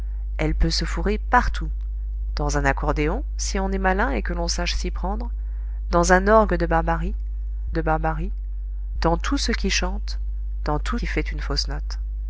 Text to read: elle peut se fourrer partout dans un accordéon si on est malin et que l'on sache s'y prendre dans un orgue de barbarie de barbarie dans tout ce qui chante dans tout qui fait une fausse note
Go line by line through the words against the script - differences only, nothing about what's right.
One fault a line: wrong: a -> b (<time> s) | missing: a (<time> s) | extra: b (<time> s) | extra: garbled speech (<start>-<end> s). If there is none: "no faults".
no faults